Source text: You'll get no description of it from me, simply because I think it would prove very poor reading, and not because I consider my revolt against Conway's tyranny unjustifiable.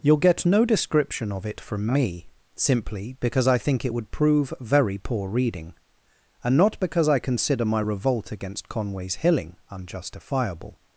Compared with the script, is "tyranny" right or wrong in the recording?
wrong